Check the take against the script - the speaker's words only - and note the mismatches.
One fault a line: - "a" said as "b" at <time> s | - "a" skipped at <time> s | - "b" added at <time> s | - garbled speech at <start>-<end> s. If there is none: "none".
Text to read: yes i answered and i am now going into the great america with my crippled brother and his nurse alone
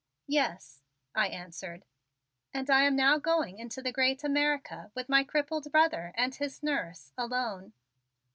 none